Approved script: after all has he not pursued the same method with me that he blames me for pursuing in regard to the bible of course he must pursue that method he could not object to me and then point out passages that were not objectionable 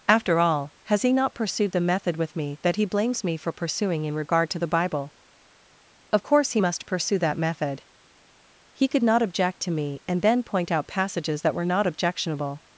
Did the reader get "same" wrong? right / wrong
wrong